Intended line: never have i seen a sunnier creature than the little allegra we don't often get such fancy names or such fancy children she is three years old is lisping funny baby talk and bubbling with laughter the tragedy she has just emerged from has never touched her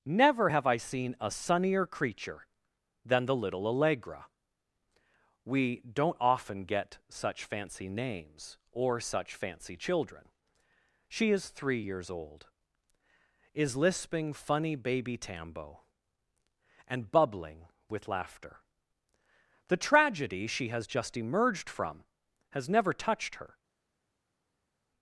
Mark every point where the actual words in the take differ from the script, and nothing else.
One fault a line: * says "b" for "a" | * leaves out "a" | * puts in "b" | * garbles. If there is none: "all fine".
* says "tambo" for "talk"